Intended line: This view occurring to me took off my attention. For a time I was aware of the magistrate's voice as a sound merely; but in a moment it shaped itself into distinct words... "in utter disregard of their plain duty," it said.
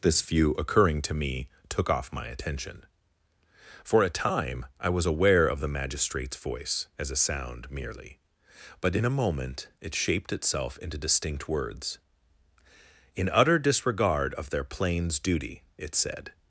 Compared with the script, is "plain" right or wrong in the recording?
wrong